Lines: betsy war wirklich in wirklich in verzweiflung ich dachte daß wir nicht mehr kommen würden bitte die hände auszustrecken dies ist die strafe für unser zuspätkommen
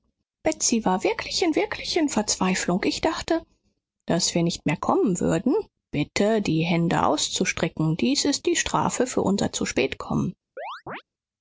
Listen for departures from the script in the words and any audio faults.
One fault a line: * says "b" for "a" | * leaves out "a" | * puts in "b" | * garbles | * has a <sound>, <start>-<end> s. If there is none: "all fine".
* has a chirp, 10.6-11.0 s